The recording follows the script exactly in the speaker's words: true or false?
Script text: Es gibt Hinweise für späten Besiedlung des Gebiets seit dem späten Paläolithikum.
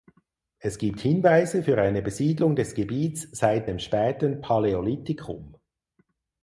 false